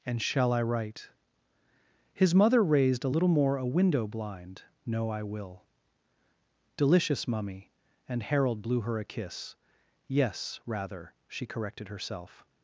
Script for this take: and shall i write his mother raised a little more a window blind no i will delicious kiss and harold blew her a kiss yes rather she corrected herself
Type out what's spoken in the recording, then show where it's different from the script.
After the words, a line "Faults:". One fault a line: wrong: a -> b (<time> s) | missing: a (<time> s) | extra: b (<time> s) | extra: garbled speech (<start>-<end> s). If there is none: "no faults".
and shall i write his mother raised a little more a window blind no i will delicious mummy and harold blew her a kiss yes rather she corrected herself
Faults:
wrong: kiss -> mummy (7.3 s)